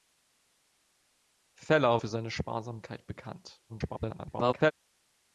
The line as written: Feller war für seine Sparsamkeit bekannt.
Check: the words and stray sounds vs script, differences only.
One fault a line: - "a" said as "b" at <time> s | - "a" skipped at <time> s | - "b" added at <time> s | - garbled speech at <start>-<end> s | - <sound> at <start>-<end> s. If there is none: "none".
- "war" skipped at 2.0 s
- garbled speech at 3.7-4.7 s